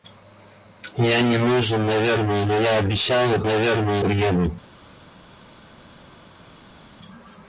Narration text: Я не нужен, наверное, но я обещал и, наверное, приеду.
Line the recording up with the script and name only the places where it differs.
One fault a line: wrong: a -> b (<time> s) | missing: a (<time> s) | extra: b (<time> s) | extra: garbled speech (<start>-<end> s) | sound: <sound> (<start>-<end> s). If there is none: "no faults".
no faults